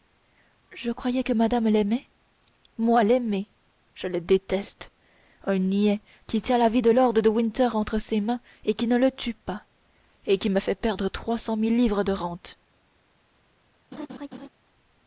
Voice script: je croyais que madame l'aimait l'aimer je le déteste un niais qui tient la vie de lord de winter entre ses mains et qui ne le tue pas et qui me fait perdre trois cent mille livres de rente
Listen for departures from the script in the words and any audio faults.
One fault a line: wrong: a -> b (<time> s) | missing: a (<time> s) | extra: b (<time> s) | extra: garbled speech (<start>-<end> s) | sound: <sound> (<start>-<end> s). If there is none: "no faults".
extra: moi (2.8 s)
sound: laugh (13.9-14.5 s)